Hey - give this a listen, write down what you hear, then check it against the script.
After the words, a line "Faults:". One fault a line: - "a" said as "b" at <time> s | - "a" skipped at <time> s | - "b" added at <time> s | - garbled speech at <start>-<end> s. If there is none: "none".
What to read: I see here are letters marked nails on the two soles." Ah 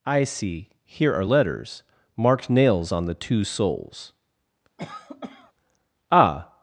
I see here are letters marked nails on the two soles." Ah
Faults:
none